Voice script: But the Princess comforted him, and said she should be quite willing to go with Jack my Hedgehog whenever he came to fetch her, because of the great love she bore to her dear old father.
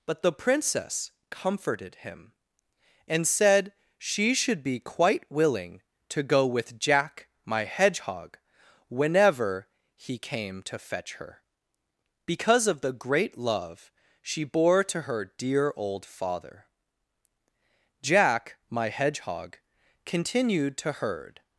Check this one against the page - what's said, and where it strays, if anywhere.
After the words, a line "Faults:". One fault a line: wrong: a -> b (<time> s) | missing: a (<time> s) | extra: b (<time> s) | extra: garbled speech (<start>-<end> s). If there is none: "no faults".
But the Princess comforted him, and said she should be quite willing to go with Jack my Hedgehog whenever he came to fetch her, because of the great love she bore to her dear old father. Jack my Hedgehog continued to herd
Faults:
extra: Jack my Hedgehog continued to herd (18.0 s)